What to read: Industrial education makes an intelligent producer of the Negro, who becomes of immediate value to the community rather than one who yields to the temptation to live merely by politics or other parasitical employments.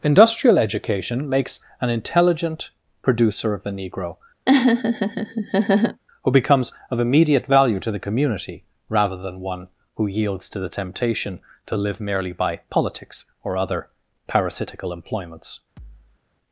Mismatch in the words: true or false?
false